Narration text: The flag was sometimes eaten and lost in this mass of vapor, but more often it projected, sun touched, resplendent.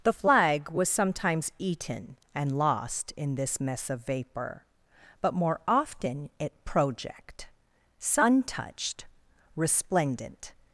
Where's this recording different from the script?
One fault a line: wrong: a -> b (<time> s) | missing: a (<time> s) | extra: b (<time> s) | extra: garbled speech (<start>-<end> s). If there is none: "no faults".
wrong: mass -> mess (3.6 s)
wrong: projected -> project (6.6 s)